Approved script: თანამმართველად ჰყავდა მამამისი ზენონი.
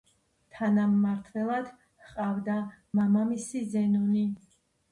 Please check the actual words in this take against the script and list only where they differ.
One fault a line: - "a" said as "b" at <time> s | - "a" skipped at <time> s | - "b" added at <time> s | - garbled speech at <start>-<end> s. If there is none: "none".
none